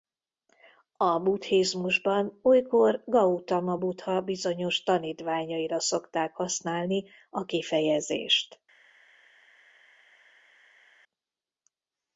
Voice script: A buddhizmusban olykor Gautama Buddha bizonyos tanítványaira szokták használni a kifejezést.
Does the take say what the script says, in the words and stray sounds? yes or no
yes